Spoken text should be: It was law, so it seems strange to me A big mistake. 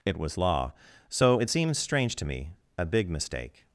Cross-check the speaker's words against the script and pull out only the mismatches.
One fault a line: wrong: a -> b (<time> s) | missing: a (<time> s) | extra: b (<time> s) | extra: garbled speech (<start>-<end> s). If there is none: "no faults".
no faults